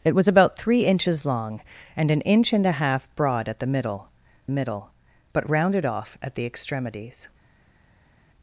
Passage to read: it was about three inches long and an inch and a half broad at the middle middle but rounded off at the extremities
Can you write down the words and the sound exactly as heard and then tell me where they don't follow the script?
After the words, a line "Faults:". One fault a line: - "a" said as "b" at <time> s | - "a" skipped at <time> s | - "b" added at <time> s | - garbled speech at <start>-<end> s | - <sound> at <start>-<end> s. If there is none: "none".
it was about three inches long and an inch and a half broad at the middle middle but rounded off at the extremities
Faults:
none